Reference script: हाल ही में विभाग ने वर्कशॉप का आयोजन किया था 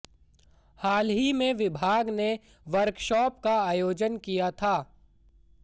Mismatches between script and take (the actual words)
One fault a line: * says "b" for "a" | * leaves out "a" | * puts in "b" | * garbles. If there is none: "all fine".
all fine